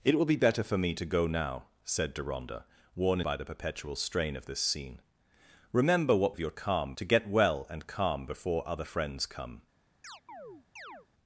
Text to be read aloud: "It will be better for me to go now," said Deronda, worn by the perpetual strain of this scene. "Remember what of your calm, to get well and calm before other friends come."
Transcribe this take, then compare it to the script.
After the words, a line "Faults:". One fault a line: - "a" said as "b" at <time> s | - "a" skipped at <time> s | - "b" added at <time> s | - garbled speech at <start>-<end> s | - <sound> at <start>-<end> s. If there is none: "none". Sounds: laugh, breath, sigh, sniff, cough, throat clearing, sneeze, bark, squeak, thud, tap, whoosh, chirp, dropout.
"It will be better for me to go now," said Deronda, worn by the perpetual strain of this scene. "Remember what of your calm, to get well and calm before other friends come."
Faults:
- chirp at 10.0-11.1 s